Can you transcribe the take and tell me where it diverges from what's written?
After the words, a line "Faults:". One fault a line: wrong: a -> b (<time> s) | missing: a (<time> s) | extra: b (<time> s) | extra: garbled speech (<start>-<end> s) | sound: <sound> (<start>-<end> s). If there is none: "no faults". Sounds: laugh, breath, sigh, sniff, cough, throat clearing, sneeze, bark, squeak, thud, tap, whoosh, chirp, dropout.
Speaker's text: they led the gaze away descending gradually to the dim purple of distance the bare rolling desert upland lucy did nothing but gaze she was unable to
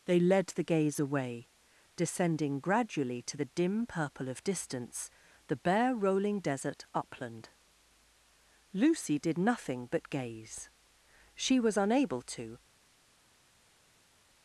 they led the gaze away descending gradually to the dim purple of distance the bare rolling desert upland lucy did nothing but gaze she was unable to
Faults:
no faults